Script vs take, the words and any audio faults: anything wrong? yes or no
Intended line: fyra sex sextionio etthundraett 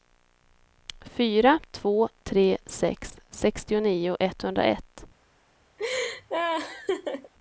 yes